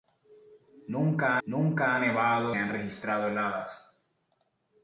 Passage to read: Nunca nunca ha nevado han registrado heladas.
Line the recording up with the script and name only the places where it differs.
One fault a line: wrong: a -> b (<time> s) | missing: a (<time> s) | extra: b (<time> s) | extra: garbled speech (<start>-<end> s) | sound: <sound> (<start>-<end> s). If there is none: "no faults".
no faults